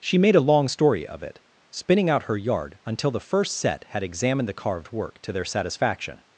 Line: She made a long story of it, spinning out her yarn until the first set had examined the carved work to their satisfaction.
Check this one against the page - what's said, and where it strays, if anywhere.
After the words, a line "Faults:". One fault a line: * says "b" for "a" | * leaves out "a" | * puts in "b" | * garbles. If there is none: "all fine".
She made a long story of it, spinning out her yard until the first set had examined the carved work to their satisfaction.
Faults:
* says "yard" for "yarn"